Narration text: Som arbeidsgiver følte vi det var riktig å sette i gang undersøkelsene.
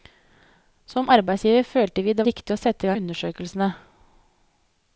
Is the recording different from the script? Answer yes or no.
yes